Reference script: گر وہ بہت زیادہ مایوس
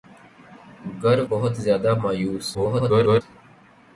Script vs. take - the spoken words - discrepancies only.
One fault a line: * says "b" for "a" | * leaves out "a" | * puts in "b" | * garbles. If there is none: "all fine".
* leaves out "وہ"
* garbles